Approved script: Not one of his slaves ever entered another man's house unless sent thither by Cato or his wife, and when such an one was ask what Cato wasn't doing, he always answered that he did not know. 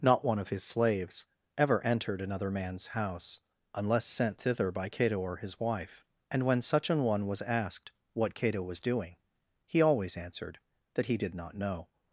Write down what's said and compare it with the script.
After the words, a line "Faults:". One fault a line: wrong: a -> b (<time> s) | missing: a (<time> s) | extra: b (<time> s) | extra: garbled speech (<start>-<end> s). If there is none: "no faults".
Not one of his slaves ever entered another man's house unless sent thither by Cato or his wife, and when such an one was asked what Cato was doing, he always answered that he did not know.
Faults:
wrong: ask -> asked (7.4 s)
wrong: wasn't -> was (8.6 s)